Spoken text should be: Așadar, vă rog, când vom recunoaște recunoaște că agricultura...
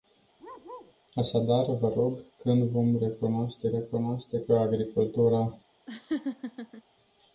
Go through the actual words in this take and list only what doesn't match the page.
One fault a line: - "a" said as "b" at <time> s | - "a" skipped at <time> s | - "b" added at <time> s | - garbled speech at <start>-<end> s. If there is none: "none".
none